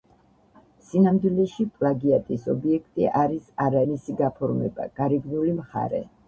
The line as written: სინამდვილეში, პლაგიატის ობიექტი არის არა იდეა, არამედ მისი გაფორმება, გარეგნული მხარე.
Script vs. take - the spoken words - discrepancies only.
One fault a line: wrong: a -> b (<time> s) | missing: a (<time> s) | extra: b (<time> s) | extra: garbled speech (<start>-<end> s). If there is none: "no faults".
missing: იდეა არამედ (3.8 s)